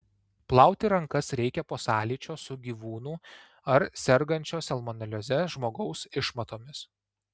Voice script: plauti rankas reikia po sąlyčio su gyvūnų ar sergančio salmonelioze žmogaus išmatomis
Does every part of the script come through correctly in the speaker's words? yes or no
yes